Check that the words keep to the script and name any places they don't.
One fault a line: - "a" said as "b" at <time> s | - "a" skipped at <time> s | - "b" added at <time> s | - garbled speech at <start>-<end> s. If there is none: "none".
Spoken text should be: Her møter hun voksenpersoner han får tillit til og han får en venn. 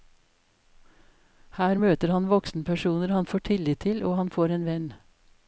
- "hun" said as "han" at 2.1 s